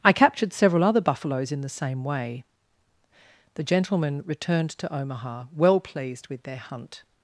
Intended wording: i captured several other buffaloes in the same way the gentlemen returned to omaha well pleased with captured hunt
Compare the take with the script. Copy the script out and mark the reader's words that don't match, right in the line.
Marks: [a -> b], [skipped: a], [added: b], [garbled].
i captured several other buffaloes in the same way the gentlemen returned to omaha well pleased with [captured -> their] hunt